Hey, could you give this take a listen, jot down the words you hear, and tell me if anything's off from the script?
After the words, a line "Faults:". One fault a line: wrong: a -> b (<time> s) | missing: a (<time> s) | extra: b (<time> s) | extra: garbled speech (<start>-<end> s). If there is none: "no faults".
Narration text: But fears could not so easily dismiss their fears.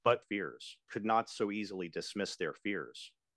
But fears could not so easily dismiss their fears.
Faults:
no faults